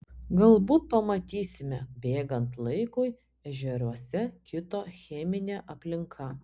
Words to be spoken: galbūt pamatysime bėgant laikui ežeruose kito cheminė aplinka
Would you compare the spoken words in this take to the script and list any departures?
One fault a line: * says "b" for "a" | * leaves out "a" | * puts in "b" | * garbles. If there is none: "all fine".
all fine